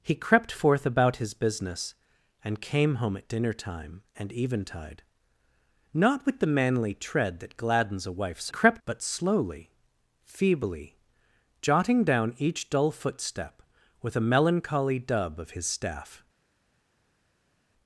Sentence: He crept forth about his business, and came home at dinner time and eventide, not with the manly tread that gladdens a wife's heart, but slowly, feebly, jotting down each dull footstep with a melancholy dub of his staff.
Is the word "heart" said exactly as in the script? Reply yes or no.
no